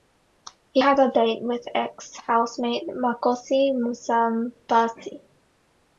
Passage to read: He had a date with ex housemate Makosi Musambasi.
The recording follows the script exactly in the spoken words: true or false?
true